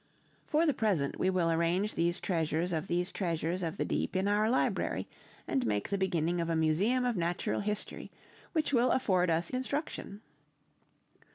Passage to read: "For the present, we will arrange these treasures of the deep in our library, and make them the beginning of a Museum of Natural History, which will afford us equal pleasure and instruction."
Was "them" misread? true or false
true